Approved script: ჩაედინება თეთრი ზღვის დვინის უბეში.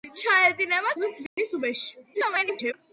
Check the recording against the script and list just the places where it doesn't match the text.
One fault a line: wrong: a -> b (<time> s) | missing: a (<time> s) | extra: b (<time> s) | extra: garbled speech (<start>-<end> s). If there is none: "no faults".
missing: თეთრი (0.9 s)
extra: garbled speech (2.1-2.7 s)